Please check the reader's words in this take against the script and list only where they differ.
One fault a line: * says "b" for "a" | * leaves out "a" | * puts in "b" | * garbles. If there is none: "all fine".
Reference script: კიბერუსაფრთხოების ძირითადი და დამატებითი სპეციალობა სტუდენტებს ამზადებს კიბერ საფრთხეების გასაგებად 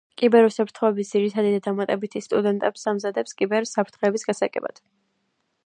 * leaves out "სპეციალობა"